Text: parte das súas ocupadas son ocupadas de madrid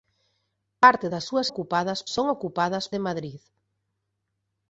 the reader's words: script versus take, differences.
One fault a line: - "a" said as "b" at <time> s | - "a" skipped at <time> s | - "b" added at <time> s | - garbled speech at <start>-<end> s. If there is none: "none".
none